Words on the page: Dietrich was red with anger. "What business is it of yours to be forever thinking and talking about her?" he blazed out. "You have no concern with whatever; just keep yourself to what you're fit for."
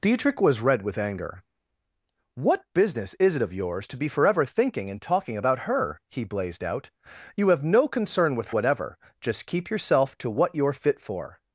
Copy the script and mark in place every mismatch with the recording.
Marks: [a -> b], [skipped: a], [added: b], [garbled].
Dietrich was red with anger. "What business is it of yours to be forever thinking and talking about her?" he blazed out. "You have no concern with whatever; just keep yourself to what you're fit for."